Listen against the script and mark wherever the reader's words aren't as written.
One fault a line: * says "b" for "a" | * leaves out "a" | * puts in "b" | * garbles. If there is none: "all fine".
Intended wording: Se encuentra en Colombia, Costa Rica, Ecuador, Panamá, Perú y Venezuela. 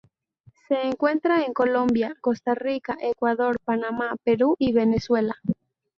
all fine